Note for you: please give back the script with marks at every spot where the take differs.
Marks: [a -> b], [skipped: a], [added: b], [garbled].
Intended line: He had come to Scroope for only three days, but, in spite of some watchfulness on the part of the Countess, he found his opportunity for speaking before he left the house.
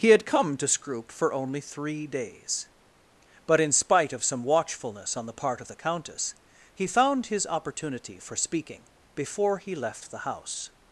He had come to Scroope for only three days, but, in spite of some watchfulness on the part of the Countess, he found his opportunity for speaking before he left the house.